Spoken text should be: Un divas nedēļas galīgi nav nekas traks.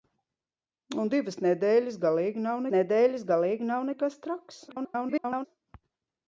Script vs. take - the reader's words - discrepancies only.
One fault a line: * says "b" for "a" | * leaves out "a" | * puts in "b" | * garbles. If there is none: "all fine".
* puts in "nedēļas galīgi nav"
* garbles